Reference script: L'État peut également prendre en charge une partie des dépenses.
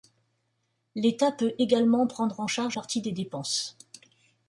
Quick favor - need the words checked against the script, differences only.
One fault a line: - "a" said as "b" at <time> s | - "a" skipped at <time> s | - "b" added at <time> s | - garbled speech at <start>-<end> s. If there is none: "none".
- "une" skipped at 2.8 s